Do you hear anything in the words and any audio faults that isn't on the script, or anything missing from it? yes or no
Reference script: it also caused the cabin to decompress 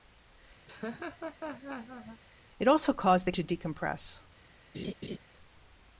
yes